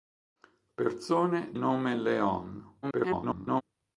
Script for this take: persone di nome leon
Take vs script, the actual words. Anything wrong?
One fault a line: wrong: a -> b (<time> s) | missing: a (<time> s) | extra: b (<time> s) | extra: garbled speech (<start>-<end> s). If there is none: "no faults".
missing: di (1.6 s)
extra: garbled speech (2.8-3.6 s)